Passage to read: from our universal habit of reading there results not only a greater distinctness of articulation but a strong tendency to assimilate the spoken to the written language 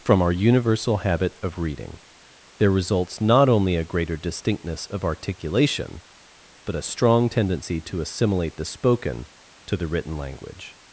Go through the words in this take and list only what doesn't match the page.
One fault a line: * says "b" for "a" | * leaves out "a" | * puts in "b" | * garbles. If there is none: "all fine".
all fine